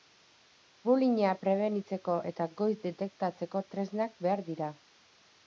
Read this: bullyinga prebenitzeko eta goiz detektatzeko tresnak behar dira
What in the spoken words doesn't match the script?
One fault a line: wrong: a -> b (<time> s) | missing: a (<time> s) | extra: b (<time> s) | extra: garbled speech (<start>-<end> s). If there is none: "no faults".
no faults